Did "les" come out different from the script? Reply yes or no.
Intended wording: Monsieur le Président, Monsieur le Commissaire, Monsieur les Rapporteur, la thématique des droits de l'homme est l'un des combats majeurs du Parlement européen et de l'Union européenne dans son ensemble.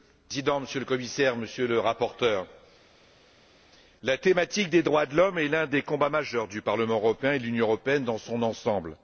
yes